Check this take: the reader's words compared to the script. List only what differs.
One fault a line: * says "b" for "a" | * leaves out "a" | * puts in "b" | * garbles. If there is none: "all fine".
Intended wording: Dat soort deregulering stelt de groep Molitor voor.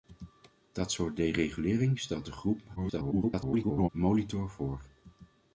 * garbles